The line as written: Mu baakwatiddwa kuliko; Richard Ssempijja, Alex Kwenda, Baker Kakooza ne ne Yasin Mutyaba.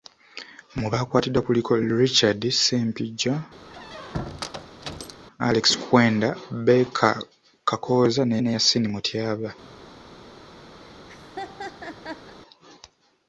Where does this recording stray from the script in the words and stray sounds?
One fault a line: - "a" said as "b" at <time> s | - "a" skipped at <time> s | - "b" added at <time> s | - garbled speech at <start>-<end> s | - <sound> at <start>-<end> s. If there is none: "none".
- squeak at 3.6-5.2 s
- laugh at 10.8-12.4 s